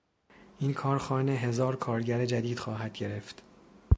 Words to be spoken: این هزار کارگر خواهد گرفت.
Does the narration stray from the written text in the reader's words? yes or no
yes